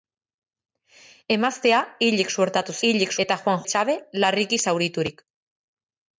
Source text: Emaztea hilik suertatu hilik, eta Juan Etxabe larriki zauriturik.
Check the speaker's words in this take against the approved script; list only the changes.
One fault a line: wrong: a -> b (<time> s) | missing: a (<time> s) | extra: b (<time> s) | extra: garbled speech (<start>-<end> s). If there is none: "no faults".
no faults